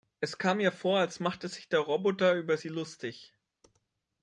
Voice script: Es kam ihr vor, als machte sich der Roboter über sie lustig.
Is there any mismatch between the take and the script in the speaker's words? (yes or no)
no